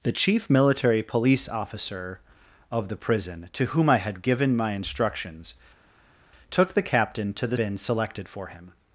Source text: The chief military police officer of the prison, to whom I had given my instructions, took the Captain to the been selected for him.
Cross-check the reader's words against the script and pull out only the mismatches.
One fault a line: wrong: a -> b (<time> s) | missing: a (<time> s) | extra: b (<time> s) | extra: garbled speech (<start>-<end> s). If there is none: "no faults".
no faults